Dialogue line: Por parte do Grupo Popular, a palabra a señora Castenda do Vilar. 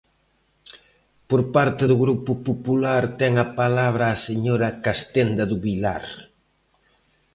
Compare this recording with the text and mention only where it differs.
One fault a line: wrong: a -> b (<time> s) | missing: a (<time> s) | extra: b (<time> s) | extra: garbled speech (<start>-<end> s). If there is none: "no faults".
extra: ten (3.2 s)